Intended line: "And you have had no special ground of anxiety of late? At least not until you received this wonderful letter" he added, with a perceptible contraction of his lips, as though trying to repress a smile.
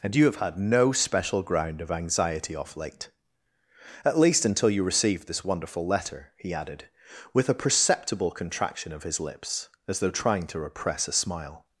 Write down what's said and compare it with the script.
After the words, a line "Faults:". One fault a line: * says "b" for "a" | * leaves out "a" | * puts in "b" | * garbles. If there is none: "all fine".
"And you have had no special ground of anxiety off late? At least until you received this wonderful letter" he added, with a perceptible contraction of his lips, as though trying to repress a smile.
Faults:
* says "off" for "of"
* leaves out "not"